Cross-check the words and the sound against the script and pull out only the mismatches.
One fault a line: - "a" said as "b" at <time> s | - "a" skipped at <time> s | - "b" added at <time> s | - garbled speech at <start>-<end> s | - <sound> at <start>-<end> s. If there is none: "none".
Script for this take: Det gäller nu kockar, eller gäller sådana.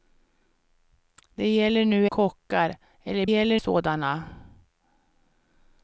none